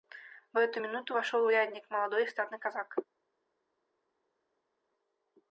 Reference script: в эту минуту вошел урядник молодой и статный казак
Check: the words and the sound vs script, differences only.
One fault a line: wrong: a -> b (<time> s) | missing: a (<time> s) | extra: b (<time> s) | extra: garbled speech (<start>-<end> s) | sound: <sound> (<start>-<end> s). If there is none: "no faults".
no faults